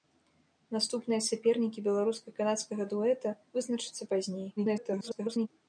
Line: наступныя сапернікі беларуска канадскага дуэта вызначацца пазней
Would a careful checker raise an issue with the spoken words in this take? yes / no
yes